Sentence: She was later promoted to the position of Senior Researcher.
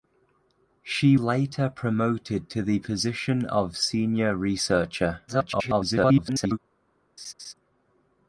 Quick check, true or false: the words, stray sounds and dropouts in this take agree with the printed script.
false